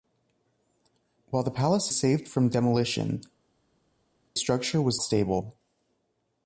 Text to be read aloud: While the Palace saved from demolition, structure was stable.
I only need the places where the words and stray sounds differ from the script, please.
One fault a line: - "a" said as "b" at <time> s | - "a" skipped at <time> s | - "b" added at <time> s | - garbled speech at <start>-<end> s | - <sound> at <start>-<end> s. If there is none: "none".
none